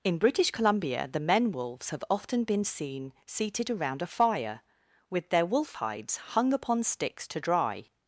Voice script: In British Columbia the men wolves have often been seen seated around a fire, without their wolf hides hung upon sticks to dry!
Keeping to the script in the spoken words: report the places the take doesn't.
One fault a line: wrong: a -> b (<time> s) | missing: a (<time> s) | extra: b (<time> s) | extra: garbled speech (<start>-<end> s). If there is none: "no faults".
wrong: without -> with (5.1 s)